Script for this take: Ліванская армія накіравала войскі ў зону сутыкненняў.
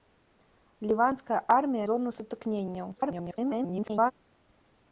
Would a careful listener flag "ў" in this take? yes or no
yes